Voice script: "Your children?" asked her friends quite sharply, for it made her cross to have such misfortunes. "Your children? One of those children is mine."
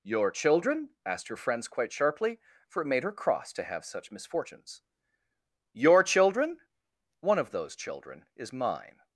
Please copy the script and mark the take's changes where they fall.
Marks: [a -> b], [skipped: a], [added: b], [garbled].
"Your children?" asked her friends quite sharply, for it made her cross to have such misfortunes. "Your children? One of those children is mine."